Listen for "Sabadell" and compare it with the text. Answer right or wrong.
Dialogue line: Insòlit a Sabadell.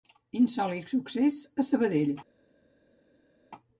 right